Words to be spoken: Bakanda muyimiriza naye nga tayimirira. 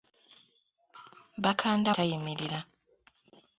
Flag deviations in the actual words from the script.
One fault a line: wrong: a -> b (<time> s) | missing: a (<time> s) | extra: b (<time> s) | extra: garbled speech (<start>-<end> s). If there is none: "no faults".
missing: muyimiriza naye nga (1.9 s)